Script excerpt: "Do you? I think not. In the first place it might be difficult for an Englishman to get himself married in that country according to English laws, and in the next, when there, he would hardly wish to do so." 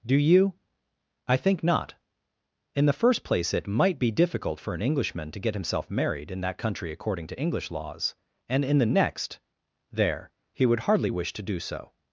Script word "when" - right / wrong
wrong